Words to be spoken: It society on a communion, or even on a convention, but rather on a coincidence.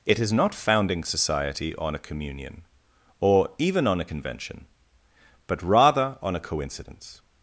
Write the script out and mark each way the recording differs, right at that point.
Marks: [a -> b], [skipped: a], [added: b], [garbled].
It [added: is not founding] society on a communion, or even on a convention, but rather on a coincidence.